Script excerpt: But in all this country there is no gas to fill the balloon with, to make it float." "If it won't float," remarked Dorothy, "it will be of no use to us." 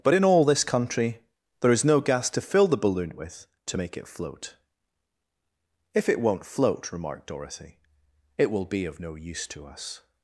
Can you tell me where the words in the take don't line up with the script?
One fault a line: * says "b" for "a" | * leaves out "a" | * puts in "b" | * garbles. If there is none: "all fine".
all fine